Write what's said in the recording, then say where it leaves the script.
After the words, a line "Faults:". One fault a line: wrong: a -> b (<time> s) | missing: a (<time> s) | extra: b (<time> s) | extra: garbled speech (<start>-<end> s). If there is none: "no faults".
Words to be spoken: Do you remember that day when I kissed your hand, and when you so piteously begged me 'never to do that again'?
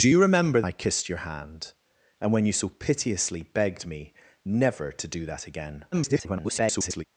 Do you remember I kissed your hand, and when you so piteously begged me 'never to do that again'? [garbled]
Faults:
missing: that day when (0.6 s)
extra: garbled speech (5.9-7.0 s)